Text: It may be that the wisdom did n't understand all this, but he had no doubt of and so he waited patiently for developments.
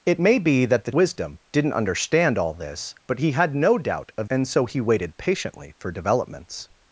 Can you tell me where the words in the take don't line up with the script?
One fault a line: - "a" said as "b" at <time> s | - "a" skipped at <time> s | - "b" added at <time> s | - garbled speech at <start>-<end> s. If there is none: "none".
none